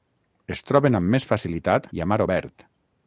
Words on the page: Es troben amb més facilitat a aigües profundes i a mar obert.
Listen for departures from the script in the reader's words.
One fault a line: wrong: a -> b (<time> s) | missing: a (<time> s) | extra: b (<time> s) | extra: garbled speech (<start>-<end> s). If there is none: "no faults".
missing: a aigües profundes (1.9 s)